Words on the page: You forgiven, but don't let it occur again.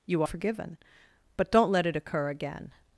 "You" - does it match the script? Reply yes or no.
yes